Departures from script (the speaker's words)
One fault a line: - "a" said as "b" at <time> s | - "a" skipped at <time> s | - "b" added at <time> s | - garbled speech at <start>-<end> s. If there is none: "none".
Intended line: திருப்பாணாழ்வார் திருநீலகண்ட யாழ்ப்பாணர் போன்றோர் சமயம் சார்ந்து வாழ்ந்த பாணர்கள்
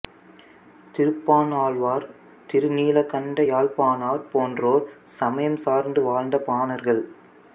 none